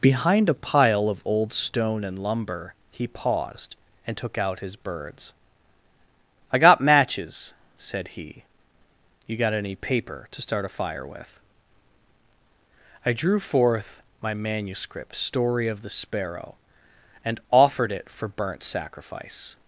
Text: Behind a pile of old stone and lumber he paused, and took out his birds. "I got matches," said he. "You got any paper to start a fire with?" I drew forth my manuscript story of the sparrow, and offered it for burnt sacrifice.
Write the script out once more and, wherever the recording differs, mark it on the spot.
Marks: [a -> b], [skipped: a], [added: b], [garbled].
Behind a pile of old stone and lumber he paused, and took out his birds. "I got matches," said he. "You got any paper to start a fire with?" I drew forth my manuscript story of the sparrow, and offered it for burnt sacrifice.